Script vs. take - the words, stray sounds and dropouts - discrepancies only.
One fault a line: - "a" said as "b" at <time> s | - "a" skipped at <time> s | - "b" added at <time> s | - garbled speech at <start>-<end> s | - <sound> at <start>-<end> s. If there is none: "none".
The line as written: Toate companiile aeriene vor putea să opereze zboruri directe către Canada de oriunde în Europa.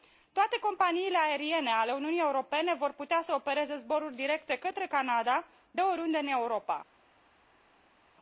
- "ale Uniunii Europene" added at 1.7 s